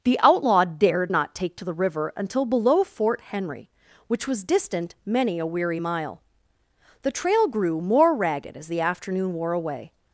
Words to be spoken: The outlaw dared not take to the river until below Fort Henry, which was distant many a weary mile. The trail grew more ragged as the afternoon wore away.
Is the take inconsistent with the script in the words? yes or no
no